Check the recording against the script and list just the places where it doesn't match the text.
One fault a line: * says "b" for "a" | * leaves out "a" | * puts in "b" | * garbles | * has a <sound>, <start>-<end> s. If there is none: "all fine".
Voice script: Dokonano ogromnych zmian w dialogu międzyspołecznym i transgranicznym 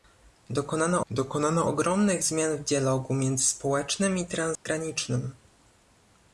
* puts in "dokonano"
* has a dropout, 4.6-4.7 s